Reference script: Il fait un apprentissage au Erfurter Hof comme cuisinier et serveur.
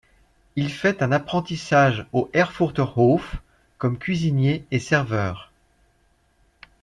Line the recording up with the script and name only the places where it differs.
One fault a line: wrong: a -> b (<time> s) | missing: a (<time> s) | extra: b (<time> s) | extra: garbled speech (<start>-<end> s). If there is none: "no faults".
no faults